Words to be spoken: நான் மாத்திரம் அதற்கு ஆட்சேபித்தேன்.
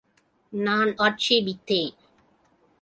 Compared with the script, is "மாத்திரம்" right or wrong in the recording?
wrong